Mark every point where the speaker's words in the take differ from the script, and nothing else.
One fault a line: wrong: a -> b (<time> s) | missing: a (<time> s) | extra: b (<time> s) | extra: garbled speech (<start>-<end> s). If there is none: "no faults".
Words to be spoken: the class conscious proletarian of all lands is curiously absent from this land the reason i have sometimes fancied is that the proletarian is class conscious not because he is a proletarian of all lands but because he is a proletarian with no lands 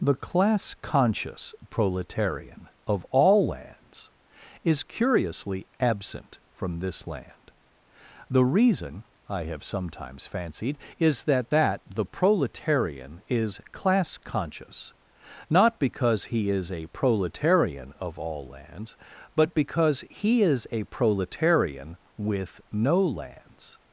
extra: that (11.5 s)